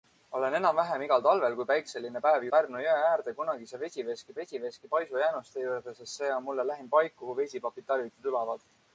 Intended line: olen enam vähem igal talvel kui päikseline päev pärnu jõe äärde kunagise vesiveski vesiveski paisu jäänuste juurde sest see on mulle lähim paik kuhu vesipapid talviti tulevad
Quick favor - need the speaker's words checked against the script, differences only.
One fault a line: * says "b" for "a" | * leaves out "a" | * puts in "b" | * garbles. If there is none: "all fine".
all fine